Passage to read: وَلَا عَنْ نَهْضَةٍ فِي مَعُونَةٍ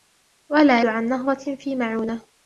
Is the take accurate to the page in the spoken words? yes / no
yes